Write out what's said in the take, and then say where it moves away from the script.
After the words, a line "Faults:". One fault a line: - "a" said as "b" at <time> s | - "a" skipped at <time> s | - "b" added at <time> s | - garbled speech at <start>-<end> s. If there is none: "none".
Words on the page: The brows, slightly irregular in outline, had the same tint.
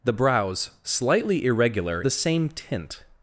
The brows, slightly irregular the same tint.
Faults:
- "in outline had" skipped at 2.0 s